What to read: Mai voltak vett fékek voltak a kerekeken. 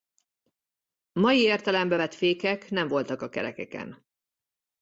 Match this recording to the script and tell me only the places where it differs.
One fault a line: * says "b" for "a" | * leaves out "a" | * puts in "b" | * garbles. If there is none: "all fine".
* says "értelembe" for "voltak"
* puts in "nem"